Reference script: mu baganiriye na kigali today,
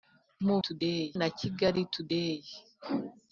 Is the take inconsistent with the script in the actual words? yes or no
yes